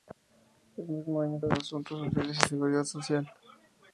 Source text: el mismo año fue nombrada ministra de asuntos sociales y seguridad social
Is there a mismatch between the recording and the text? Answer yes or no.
yes